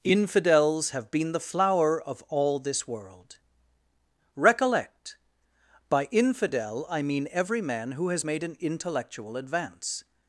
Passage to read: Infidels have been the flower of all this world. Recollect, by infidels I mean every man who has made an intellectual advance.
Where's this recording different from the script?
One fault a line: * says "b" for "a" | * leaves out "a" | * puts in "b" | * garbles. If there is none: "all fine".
* says "infidel" for "infidels"